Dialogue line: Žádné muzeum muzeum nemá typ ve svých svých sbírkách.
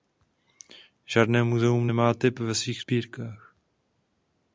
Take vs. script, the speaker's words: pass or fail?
fail